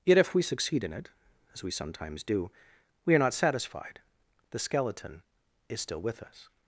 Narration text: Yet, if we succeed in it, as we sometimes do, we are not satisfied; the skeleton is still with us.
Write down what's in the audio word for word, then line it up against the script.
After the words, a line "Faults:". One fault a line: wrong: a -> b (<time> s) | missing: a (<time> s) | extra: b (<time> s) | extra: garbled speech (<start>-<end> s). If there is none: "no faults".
Yet, if we succeed in it, as we sometimes do, we are not satisfied; the skeleton is still with us.
Faults:
no faults